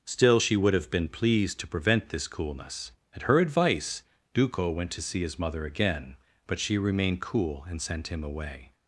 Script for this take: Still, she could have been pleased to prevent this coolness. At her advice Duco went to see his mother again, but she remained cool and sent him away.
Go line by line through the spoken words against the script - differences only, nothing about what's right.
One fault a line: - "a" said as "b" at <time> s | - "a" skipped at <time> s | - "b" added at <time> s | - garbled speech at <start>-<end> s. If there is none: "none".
- "could" said as "would" at 0.5 s